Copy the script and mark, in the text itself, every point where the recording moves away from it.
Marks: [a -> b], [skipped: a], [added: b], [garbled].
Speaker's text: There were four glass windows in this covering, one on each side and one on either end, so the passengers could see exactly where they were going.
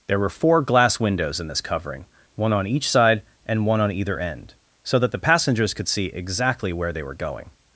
There were four glass windows in this covering, one on each side and one on either end, so [added: that] the passengers could see exactly where they were going.